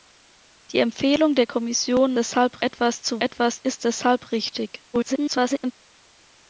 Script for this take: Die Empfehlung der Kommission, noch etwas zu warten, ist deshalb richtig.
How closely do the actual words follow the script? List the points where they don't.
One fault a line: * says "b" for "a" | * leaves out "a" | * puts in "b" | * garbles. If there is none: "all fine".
* says "deshalb" for "noch"
* says "etwas" for "warten"
* garbles